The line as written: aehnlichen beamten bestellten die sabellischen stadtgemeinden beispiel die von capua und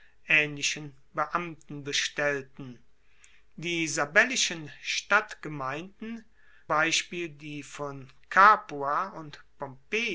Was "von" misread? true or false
false